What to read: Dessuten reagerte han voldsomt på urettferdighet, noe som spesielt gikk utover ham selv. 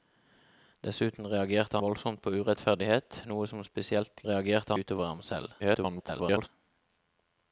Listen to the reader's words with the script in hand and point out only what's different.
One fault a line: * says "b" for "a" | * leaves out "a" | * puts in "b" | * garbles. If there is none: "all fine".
* leaves out "han"
* says "reagerte" for "gikk"
* garbles